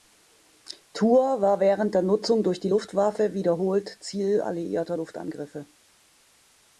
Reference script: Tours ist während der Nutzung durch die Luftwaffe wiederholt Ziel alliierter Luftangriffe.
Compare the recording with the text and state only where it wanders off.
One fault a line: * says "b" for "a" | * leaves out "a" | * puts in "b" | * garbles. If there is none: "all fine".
* says "war" for "ist"